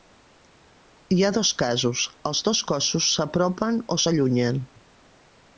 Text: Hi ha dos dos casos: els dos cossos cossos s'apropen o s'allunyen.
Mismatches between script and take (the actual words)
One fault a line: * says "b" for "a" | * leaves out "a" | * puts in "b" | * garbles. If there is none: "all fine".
* leaves out "dos"
* leaves out "cossos"